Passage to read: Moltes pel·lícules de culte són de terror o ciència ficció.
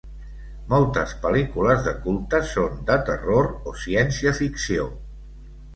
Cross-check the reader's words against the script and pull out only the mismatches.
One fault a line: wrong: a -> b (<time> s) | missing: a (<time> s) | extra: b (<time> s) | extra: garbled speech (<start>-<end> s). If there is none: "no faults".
no faults